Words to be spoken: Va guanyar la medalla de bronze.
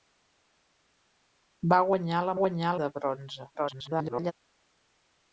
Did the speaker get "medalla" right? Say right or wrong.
wrong